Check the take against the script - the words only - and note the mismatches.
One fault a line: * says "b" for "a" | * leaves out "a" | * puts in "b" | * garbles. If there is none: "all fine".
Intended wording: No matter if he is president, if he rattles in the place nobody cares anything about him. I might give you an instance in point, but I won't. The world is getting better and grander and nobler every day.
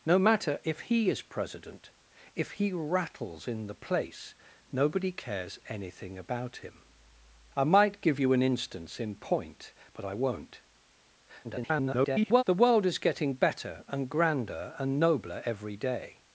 * garbles